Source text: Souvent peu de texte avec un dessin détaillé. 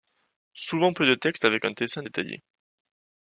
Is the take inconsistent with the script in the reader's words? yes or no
no